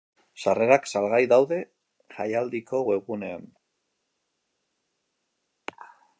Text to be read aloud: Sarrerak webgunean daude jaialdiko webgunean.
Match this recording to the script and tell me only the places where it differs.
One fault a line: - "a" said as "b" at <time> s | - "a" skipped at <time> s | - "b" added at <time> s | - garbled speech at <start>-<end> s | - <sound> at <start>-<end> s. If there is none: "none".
- "webgunean" said as "salgai" at 0.9 s